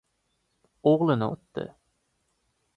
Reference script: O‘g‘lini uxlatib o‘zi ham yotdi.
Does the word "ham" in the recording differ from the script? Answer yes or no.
yes